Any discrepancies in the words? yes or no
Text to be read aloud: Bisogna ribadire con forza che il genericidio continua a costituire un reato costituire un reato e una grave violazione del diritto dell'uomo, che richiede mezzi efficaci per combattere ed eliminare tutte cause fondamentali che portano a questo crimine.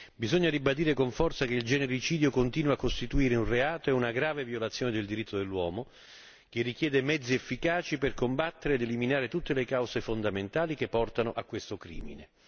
yes